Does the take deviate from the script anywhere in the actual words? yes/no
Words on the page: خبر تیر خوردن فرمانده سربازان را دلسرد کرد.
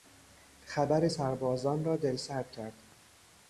yes